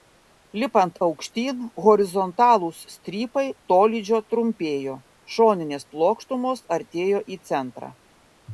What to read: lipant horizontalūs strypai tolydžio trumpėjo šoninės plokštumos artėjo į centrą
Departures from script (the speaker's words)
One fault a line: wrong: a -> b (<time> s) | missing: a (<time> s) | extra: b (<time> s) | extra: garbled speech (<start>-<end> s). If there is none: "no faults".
extra: aukštyn (1.1 s)